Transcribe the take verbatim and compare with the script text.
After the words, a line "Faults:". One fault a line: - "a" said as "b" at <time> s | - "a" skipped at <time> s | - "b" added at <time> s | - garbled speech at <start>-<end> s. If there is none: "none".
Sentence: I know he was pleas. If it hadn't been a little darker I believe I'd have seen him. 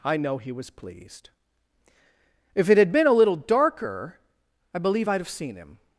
I know he was pleased. If it had been a little darker I believe I'd have seen him.
Faults:
- "pleas" said as "pleased" at 0.7 s
- "hadn't" said as "had" at 2.8 s